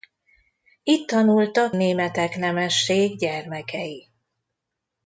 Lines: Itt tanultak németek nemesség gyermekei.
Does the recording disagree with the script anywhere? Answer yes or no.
no